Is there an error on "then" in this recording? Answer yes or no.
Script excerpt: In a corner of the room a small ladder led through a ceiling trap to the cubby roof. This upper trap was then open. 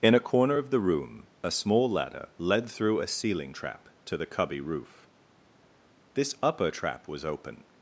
yes